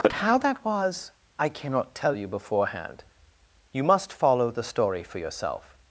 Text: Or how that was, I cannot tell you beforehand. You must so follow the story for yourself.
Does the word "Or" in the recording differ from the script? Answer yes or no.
yes